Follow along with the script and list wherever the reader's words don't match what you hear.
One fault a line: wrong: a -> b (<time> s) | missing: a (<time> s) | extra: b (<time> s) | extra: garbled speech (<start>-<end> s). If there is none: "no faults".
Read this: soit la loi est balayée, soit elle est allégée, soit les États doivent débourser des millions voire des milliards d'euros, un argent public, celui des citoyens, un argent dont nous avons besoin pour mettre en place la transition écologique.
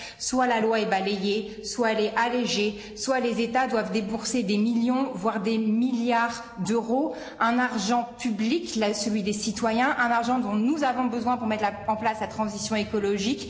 no faults